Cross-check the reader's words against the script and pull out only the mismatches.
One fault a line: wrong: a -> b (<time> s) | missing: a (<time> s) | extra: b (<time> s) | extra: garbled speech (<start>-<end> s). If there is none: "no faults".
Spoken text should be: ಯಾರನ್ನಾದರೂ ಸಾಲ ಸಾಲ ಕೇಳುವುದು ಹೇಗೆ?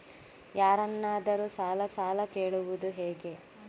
no faults